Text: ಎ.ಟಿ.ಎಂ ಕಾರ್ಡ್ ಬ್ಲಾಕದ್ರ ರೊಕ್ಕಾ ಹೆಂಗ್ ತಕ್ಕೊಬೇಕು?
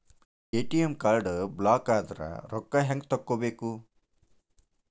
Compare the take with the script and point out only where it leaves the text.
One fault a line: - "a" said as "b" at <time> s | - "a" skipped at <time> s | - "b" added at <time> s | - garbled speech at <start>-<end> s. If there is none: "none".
none